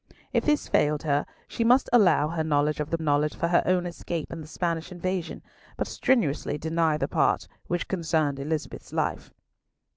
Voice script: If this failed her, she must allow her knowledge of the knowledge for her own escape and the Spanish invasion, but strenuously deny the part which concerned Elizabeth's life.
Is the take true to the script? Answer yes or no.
yes